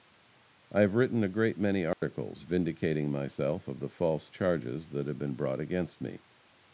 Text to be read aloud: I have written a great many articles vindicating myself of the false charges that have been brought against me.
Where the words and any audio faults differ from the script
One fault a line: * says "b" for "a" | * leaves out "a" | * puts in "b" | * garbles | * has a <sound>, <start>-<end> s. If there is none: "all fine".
* has a dropout, 1.9-2.0 s